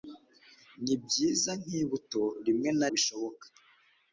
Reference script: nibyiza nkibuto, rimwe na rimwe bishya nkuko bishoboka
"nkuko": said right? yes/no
no